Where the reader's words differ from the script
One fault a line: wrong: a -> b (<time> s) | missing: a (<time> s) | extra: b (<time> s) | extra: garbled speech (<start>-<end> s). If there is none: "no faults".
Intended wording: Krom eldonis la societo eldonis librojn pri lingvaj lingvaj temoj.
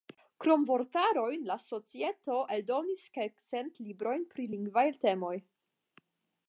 wrong: eldonis -> vortarojn (0.7 s)
extra: kelkcent (3.2 s)
missing: lingvaj (4.9 s)